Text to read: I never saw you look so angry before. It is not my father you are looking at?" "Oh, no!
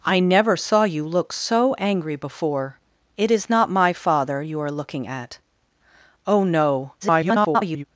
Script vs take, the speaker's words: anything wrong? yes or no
yes